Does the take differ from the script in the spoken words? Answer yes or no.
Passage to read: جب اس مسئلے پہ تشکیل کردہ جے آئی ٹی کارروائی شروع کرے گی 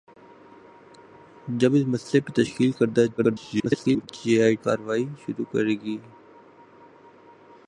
yes